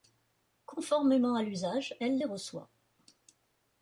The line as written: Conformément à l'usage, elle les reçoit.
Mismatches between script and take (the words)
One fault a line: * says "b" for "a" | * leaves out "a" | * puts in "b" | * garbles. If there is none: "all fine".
all fine